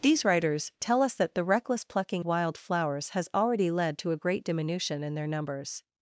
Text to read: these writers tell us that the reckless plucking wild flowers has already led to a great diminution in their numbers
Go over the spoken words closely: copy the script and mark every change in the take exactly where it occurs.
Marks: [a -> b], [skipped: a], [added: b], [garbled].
these writers tell us that the reckless plucking wild flowers has already led to a great diminution in their numbers